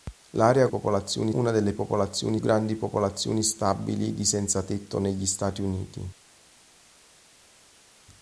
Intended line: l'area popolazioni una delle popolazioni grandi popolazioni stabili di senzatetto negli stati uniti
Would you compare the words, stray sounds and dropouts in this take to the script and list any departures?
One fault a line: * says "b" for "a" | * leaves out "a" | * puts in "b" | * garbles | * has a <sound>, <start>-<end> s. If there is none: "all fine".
all fine